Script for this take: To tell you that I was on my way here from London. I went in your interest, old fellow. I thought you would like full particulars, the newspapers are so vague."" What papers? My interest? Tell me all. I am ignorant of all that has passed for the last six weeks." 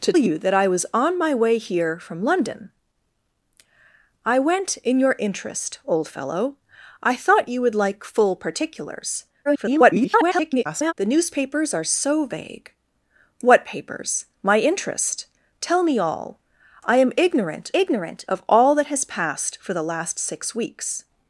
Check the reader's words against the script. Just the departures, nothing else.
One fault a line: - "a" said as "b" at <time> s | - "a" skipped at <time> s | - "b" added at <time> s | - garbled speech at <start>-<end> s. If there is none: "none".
- "tell" skipped at 0.1 s
- garbled speech at 9.4-10.9 s
- "ignorant" added at 17.7 s